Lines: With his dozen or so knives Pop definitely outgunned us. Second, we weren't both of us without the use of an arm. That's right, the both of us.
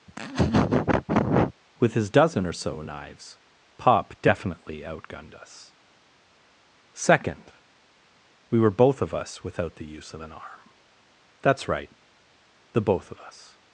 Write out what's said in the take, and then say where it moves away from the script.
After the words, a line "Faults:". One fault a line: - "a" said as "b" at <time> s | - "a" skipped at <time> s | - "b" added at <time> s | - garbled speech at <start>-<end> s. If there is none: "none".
With his dozen or so knives Pop definitely outgunned us. Second, we were both of us without the use of an arm. That's right, the both of us.
Faults:
- "weren't" said as "were" at 8.6 s